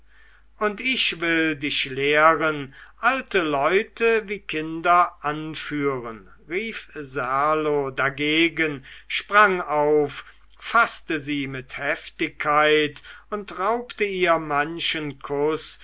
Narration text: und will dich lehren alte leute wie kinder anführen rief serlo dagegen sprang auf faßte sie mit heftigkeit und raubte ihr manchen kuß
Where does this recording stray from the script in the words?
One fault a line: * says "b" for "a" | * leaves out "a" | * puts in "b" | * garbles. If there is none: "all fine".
* puts in "ich"